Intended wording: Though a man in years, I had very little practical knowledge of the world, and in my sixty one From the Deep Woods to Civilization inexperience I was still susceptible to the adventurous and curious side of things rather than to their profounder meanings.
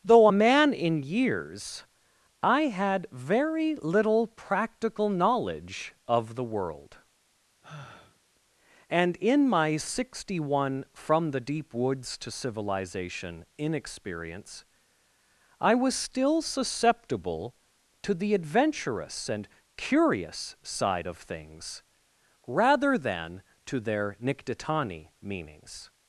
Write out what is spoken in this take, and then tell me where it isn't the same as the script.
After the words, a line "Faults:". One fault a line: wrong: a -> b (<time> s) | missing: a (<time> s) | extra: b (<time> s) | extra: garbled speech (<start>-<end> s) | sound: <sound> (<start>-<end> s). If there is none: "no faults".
Though a man in years, I had very little practical knowledge of the world, and in my sixty one From the Deep Woods to Civilization inexperience I was still susceptible to the adventurous and curious side of things rather than to their nictitani meanings.
Faults:
sound: sigh (7.6-8.2 s)
wrong: profounder -> nictitani (24.2 s)